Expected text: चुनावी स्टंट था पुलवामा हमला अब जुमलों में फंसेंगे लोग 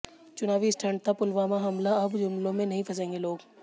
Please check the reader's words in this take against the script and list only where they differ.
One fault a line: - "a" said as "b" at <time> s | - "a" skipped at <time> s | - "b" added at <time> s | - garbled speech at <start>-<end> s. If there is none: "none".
- "नहीं" added at 2.7 s